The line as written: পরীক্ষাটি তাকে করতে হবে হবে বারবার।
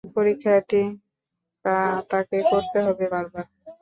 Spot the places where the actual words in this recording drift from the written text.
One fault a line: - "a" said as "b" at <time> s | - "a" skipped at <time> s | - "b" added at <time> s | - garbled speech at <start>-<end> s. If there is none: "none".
- "হবে" skipped at 3.0 s